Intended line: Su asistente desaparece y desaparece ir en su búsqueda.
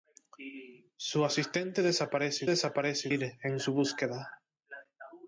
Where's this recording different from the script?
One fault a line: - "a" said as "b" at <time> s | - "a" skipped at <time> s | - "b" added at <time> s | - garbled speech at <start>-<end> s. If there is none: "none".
none